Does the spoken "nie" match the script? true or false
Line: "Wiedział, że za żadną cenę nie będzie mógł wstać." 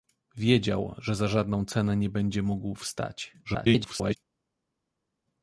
true